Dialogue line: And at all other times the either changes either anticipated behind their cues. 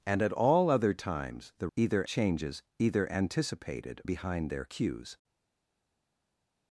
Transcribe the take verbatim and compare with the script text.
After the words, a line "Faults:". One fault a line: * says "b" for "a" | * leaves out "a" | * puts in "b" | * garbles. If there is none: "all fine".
And at all other times the either changes either anticipated behind their cues.
Faults:
all fine